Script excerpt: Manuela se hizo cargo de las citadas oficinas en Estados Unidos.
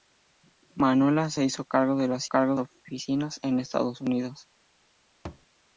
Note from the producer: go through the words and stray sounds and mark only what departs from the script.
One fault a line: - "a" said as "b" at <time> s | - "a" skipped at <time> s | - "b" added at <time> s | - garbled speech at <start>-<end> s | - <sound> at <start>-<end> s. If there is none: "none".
- "citadas" said as "cargo" at 2.3 s
- thud at 5.2-5.5 s